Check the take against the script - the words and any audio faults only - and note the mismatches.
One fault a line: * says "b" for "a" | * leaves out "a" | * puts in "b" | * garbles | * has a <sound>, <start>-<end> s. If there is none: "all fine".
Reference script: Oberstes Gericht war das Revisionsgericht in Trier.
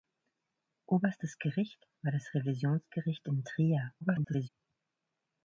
* garbles